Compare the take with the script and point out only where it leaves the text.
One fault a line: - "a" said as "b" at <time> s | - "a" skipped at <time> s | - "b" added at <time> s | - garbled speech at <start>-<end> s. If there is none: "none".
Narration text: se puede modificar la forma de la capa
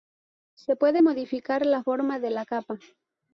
none